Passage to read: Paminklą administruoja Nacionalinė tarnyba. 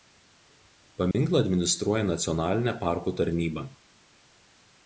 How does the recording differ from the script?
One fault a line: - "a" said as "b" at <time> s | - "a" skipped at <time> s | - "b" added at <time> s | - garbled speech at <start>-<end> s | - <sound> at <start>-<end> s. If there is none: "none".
- dropout at 1.1-1.1 s
- "parkų" added at 2.8 s